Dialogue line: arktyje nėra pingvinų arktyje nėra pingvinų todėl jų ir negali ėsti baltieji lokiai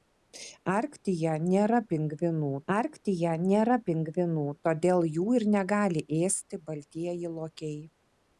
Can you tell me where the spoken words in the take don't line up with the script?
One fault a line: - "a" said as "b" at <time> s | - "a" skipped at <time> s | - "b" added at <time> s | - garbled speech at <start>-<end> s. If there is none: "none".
none